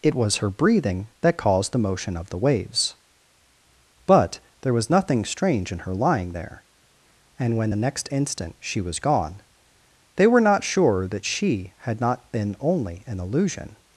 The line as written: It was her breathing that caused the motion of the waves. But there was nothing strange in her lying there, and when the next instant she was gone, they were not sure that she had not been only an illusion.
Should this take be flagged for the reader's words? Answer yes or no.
no